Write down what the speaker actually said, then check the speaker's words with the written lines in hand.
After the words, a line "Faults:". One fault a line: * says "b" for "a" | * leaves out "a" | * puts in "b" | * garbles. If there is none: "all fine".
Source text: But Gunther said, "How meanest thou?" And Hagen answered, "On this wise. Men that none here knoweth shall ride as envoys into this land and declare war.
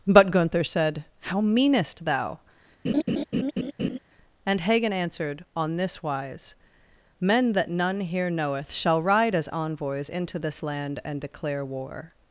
But Gunther said, "How meanest thou?" And Hagen answered, "On this wise. Men that none here knoweth shall ride as envoys into this land and declare war.
Faults:
all fine